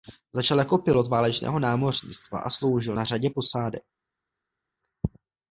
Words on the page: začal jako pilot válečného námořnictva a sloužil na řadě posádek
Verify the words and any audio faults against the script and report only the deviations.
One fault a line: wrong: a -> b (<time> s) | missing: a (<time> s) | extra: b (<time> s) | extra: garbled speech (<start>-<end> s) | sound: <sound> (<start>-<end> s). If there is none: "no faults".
no faults